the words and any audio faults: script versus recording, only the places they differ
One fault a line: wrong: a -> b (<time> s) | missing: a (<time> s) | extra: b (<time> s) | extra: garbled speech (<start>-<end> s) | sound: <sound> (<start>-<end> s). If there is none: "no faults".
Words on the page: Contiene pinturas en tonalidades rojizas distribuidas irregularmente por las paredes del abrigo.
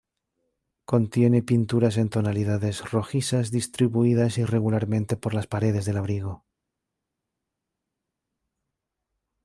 no faults